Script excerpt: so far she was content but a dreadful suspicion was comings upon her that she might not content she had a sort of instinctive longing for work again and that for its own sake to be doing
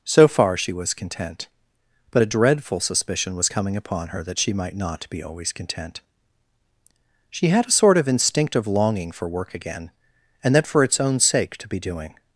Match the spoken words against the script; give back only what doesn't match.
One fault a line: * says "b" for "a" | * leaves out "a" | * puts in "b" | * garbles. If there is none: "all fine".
* says "coming" for "comings"
* puts in "be always"